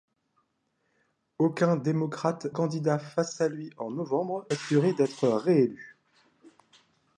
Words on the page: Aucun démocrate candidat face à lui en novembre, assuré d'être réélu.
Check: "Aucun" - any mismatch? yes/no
no